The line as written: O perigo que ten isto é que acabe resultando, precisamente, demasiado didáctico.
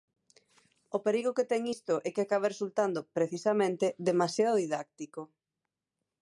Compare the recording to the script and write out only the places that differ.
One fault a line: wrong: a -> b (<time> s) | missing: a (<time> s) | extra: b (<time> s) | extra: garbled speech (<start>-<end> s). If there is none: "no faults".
no faults